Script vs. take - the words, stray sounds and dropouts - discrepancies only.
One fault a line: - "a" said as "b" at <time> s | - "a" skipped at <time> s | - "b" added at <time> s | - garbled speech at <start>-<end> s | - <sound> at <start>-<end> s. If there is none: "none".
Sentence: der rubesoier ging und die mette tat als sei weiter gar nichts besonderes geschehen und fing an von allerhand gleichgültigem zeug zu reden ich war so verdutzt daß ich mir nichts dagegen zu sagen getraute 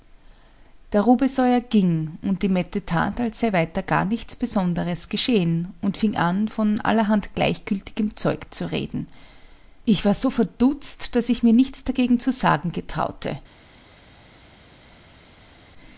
none